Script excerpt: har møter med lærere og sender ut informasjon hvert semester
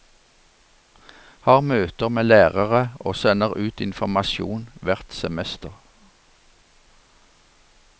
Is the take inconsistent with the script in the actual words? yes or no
no